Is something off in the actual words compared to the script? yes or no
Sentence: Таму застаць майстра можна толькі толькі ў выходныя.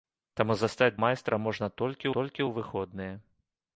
no